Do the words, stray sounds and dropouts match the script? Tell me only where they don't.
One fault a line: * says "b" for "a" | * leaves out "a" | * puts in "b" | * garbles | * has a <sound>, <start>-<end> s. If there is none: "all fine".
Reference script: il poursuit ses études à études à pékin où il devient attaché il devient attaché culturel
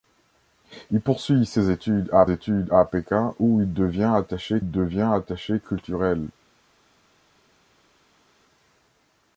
all fine